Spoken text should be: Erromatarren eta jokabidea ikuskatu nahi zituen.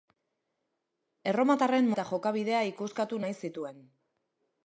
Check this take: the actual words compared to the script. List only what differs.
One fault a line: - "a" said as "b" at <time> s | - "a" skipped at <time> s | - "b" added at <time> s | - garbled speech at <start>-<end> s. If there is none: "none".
none